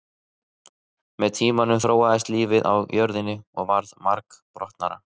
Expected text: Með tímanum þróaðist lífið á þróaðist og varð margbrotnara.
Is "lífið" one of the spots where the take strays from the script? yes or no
no